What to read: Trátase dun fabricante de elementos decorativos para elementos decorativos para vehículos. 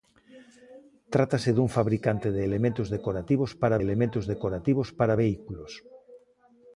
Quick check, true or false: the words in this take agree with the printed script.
true